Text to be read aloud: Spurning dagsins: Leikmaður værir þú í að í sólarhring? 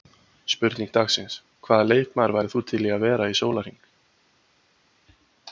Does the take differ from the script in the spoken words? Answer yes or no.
yes